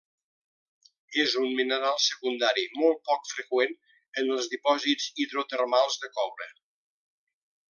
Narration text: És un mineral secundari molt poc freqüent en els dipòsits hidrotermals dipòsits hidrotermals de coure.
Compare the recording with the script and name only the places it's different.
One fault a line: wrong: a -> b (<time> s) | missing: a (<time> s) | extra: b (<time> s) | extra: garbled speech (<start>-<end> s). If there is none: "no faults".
missing: dipòsits hidrotermals (6.0 s)